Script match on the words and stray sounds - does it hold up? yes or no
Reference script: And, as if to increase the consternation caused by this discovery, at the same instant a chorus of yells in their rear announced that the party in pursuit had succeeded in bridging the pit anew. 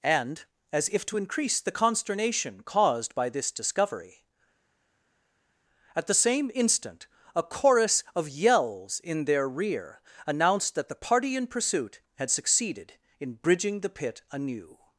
yes